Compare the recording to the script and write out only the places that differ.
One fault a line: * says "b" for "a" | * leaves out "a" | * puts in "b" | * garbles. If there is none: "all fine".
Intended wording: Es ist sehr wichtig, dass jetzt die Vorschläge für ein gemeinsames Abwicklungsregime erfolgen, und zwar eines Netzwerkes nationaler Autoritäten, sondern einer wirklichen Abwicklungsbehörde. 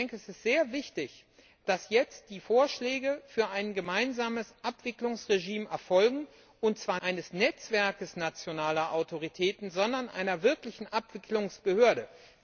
all fine